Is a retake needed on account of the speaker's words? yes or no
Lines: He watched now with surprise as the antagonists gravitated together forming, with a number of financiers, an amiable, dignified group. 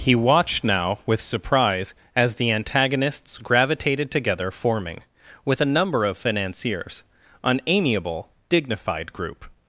no